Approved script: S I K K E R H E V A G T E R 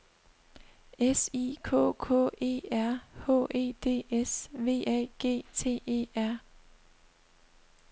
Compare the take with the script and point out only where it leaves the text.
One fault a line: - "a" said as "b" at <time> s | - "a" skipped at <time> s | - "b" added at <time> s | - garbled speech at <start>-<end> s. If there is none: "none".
- "D S" added at 3.8 s